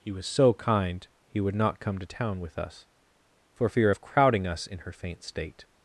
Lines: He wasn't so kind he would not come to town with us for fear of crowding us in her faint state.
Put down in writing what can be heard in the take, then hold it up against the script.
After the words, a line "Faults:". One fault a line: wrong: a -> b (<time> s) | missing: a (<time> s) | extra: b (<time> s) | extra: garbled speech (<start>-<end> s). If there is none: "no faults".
He was so kind he would not come to town with us for fear of crowding us in her faint state.
Faults:
wrong: wasn't -> was (0.1 s)